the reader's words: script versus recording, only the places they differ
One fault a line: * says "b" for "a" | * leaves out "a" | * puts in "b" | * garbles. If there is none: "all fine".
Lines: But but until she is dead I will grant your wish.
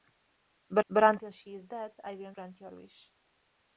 all fine